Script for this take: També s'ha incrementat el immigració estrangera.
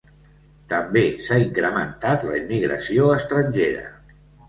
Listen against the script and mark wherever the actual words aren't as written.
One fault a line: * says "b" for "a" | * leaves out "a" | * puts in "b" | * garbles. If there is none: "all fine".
* says "la" for "el"